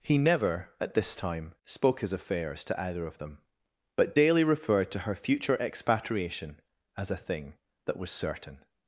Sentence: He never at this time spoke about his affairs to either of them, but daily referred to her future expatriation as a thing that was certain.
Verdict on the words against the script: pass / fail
fail